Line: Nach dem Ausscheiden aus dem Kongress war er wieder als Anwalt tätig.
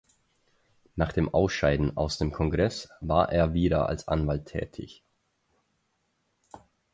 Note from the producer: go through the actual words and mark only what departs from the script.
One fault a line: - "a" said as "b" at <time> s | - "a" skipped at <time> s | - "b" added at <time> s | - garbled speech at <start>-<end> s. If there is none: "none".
none